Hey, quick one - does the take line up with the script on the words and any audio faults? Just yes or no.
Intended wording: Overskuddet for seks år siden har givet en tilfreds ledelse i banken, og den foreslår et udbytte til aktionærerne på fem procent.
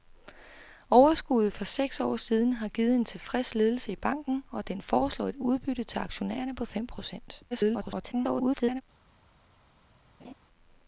no